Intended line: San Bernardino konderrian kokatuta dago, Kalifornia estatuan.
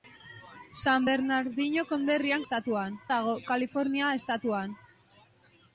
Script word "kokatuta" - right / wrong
wrong